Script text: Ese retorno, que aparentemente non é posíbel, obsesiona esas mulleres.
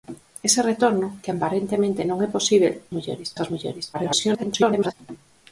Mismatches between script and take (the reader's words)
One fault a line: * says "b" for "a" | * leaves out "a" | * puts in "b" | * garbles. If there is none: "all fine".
* says "mulleres" for "obsesiona"
* garbles